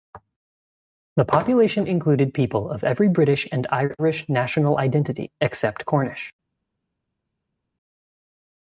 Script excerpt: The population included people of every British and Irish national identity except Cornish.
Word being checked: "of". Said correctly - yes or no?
yes